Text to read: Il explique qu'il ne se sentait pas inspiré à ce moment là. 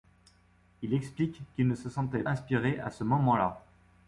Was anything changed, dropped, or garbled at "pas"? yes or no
yes